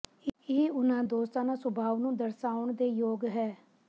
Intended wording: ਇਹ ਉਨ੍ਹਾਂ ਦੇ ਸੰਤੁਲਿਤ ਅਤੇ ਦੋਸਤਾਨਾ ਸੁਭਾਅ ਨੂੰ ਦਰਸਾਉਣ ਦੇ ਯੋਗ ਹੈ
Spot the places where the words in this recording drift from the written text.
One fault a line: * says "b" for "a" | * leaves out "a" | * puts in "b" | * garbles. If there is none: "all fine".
* leaves out "ਦੇ ਸੰਤੁਲਿਤ ਅਤੇ"